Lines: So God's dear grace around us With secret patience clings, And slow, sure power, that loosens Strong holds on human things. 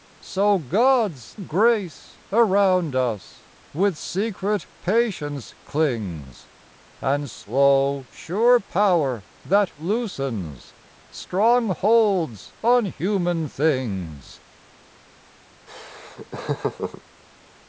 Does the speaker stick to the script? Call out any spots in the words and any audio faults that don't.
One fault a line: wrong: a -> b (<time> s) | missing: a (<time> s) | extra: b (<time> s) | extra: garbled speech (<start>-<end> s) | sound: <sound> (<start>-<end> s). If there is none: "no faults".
missing: dear (1.4 s)
sound: laugh (15.7-17.0 s)